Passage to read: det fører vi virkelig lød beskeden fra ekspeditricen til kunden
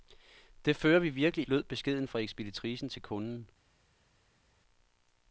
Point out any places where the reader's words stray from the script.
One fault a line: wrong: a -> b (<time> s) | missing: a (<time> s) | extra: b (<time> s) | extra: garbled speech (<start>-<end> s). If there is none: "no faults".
no faults